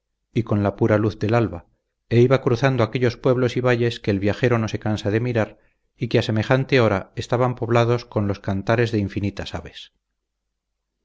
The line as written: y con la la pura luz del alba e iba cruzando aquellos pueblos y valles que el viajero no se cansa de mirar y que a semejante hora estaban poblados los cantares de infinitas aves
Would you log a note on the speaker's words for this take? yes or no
yes